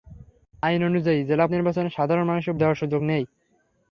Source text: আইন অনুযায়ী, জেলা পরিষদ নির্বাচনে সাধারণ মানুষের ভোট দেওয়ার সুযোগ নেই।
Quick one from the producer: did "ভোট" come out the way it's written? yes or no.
no